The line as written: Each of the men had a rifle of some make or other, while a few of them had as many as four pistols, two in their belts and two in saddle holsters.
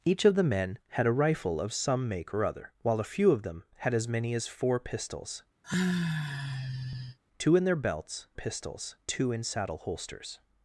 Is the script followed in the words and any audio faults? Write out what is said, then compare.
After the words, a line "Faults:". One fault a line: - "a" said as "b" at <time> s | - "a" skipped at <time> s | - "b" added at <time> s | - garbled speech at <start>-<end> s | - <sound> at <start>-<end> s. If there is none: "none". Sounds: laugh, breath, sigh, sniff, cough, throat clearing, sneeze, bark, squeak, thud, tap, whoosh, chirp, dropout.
Each of the men had a rifle of some make or other, while a few of them had as many as four pistols, two in their belts pistols two in saddle holsters.
Faults:
- sigh at 5.6-7.2 s
- "and" said as "pistols" at 8.3 s